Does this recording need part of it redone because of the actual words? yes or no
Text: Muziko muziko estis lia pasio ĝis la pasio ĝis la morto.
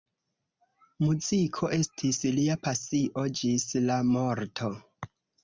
yes